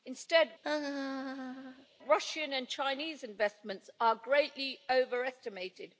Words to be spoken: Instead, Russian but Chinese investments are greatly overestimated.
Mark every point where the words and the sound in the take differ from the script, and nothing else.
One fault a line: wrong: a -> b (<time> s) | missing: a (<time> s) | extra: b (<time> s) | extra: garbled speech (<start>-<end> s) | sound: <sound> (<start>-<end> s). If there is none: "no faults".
sound: laugh (0.6-1.9 s)
wrong: but -> and (2.5 s)